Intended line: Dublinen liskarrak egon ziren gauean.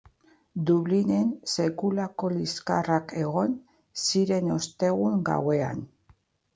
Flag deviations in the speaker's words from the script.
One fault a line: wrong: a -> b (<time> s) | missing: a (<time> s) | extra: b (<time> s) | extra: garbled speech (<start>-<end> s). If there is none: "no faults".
extra: sekulako (1.6 s)
extra: ostegun (4.6 s)